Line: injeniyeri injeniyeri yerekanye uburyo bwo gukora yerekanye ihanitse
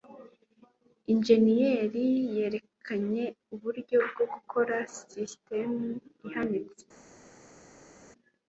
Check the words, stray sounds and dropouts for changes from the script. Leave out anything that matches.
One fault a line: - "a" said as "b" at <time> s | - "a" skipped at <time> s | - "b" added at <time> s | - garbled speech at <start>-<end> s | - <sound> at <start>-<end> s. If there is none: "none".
- "injeniyeri" skipped at 2.0 s
- "yerekanye" said as "sisitemu" at 4.9 s